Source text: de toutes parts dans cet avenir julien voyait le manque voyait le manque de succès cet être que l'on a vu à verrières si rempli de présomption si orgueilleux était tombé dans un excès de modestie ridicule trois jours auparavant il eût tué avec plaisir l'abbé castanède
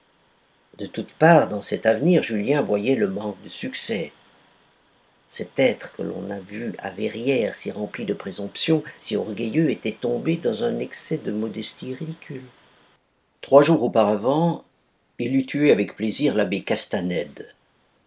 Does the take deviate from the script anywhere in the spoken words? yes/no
yes